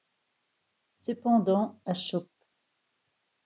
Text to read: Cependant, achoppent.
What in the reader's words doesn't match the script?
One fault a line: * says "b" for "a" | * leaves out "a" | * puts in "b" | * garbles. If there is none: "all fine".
all fine